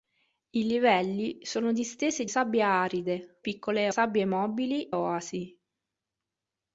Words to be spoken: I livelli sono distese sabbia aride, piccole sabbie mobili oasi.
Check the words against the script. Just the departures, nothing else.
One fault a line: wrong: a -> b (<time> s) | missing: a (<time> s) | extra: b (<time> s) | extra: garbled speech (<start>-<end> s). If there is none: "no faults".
no faults